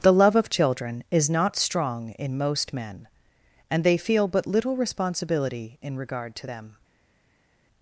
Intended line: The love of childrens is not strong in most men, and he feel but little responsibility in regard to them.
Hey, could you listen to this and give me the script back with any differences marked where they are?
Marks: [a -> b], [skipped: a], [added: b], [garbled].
The love of [childrens -> children] is not strong in most men, and [he -> they] feel but little responsibility in regard to them.